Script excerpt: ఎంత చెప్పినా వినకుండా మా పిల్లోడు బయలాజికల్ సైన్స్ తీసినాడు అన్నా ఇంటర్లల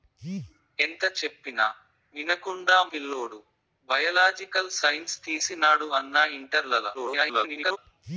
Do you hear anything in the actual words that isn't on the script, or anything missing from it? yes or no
yes